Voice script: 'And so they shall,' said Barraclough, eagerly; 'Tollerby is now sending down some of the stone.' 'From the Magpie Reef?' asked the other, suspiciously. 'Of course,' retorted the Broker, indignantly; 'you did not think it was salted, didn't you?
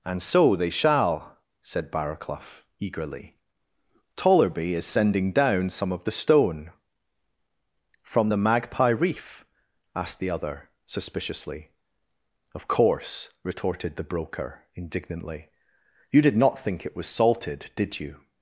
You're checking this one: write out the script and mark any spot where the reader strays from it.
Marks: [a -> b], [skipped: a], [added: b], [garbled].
'And so they shall,' said Barraclough, eagerly; 'Tollerby is [skipped: now] sending down some of the stone.' 'From the Magpie Reef?' asked the other, suspiciously. 'Of course,' retorted the Broker, indignantly; 'you did not think it was salted, [didn't -> did] you?